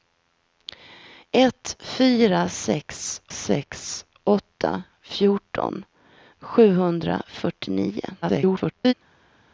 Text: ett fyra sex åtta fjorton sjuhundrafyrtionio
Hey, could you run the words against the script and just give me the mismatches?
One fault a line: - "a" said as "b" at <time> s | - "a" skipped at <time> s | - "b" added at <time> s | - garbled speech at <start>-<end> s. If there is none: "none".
- "sex" added at 3.3 s
- garbled speech at 8.2-8.9 s